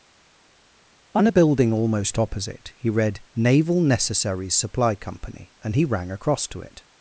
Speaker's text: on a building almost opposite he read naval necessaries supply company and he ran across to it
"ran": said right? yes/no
no